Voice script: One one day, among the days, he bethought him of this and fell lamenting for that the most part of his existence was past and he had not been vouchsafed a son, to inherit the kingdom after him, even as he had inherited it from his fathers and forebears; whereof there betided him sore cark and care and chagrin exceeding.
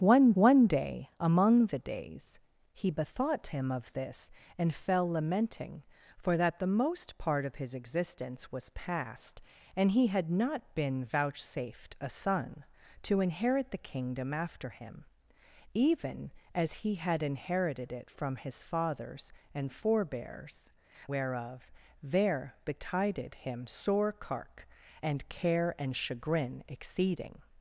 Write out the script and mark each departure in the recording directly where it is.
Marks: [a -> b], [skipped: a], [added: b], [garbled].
One one day, among the days, he bethought him of this and fell lamenting for that the most part of his existence was past and he had not been vouchsafed a son, to inherit the kingdom after him, even as he had inherited it from his fathers and forebears; whereof there betided him sore cark and care and chagrin exceeding.